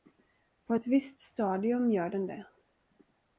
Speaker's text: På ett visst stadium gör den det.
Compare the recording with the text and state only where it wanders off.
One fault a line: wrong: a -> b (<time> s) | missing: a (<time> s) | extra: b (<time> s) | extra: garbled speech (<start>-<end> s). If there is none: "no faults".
no faults